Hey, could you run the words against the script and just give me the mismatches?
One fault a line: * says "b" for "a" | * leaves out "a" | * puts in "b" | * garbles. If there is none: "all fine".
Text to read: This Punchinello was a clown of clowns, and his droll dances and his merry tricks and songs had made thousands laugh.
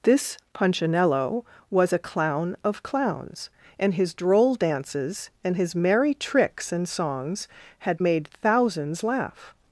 all fine